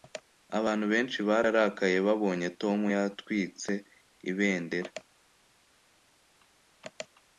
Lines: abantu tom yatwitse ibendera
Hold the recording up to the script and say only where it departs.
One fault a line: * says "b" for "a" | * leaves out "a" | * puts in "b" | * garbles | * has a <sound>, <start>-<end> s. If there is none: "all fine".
* puts in "benshi bararakaye babonye"